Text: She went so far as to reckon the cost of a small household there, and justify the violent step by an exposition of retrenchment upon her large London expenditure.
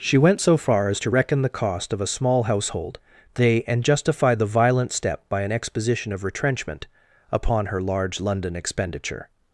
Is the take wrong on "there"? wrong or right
wrong